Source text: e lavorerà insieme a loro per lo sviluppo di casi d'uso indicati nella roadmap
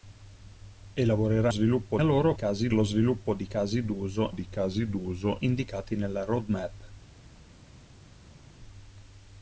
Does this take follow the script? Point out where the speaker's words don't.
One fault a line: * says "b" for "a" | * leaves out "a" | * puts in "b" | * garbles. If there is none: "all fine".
* says "sviluppo" for "insieme"
* says "casi" for "per"
* puts in "di casi d'uso"